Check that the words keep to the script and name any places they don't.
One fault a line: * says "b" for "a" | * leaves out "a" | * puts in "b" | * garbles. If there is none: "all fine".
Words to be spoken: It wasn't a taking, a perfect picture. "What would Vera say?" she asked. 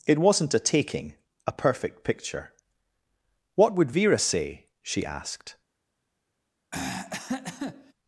all fine